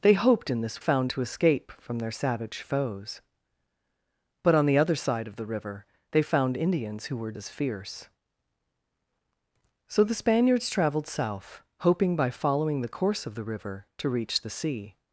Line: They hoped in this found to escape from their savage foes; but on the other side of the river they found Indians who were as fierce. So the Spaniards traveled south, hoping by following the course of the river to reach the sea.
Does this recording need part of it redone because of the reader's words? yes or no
no